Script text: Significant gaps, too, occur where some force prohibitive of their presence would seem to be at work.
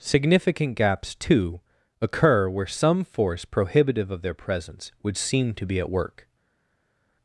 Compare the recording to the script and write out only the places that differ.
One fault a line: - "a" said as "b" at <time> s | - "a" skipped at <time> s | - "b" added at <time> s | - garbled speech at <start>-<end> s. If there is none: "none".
none